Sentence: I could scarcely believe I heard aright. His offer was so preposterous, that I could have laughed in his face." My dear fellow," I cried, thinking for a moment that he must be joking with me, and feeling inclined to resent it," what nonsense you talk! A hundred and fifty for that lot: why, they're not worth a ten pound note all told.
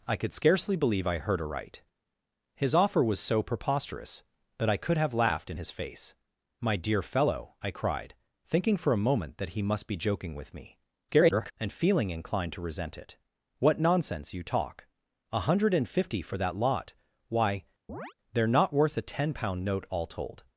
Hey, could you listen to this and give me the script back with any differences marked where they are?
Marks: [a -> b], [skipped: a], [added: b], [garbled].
I could scarcely believe I heard aright. His offer was so preposterous, that I could have laughed in his face." My dear fellow," I cried, thinking for a moment that he must be joking with me, [garbled] and feeling inclined to resent it," what nonsense you talk! A hundred and fifty for that lot: why, they're not worth a ten pound note all told.